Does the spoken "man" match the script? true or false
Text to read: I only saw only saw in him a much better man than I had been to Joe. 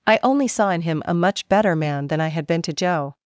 true